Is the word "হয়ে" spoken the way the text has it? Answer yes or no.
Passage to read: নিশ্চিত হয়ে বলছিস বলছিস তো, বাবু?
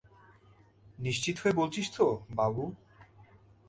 yes